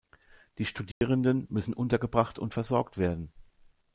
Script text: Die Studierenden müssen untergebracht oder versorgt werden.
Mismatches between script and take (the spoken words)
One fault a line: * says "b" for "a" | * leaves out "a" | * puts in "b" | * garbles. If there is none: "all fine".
* says "und" for "oder"